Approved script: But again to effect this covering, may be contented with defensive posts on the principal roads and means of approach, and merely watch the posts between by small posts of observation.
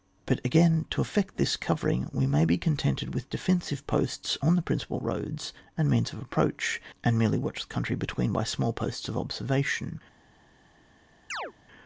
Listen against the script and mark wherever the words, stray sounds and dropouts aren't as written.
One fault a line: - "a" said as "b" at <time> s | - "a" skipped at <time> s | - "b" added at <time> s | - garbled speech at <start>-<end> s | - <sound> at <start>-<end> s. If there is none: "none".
- "we" added at 2.1 s
- "posts" said as "country" at 7.7 s
- chirp at 11.3-11.5 s